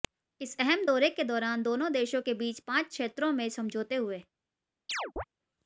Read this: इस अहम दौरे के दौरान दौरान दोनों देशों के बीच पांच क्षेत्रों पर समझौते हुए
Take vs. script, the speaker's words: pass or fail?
fail